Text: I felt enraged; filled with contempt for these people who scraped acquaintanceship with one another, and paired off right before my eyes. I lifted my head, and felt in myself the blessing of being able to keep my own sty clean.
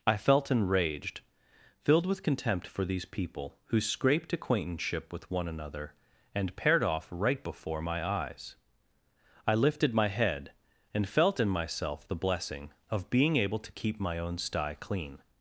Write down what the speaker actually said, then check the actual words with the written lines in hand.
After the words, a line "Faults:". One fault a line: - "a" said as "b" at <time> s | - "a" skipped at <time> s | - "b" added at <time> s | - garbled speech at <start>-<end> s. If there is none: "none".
I felt enraged; filled with contempt for these people who scraped acquaintanceship with one another, and paired off right before my eyes. I lifted my head, and felt in myself the blessing of being able to keep my own sty clean.
Faults:
none